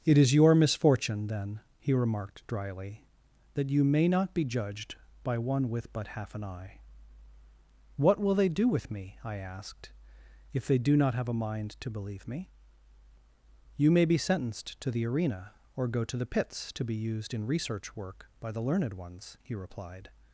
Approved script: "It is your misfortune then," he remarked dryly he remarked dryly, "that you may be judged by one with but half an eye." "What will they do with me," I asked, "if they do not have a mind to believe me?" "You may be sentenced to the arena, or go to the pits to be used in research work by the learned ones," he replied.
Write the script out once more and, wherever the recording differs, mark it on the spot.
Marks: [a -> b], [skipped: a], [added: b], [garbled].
"It is your misfortune then," he remarked dryly [skipped: he remarked dryly,] "that you may [added: not] be judged by one with but half an eye." "What will they do with me," I asked, "if they do not have a mind to believe me?" "You may be sentenced to the arena, or go to the pits to be used in research work by the learned ones," he replied.